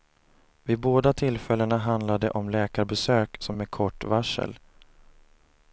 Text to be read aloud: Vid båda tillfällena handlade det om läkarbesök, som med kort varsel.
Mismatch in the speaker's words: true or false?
false